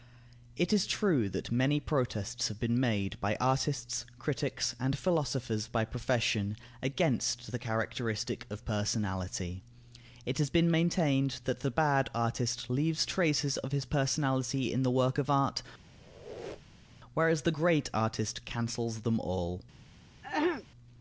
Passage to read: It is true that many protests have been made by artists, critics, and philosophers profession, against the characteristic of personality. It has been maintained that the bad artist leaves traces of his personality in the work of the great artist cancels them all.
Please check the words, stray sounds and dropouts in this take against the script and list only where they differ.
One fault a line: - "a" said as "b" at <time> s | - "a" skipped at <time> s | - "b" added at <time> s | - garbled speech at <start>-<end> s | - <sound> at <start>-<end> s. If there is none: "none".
- "by" added at 5.7 s
- "art whereas" added at 15.3 s
- squeak at 15.9-17.0 s
- throat clearing at 20.2-20.7 s